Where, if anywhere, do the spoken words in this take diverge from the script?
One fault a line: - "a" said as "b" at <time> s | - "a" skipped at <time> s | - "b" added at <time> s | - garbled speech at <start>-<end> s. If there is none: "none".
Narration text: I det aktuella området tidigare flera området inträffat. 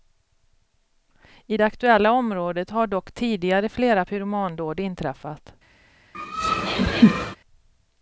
- "har dock" added at 2.7 s
- "området" said as "pyromandåd" at 4.0 s